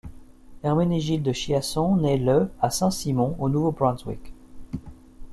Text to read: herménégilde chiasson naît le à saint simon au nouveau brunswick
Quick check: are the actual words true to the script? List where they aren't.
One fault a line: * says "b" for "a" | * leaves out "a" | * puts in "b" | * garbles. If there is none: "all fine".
all fine